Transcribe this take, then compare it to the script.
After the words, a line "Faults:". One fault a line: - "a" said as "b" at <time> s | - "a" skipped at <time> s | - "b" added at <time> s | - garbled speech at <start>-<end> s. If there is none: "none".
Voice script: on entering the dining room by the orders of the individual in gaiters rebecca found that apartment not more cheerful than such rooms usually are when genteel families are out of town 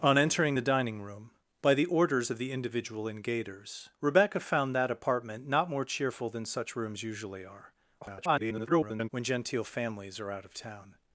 on entering the dining room by the orders of the individual in gaiters rebecca found that apartment not more cheerful than such rooms usually are [garbled] when genteel families are out of town
Faults:
- garbled speech at 8.0-9.1 s